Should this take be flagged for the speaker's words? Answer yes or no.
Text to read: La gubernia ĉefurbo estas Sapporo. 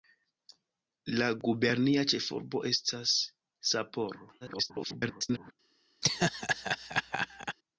yes